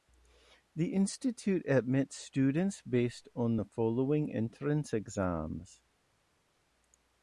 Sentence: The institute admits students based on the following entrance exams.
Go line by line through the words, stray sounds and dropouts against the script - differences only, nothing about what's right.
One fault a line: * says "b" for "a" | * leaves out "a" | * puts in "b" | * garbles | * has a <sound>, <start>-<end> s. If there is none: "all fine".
all fine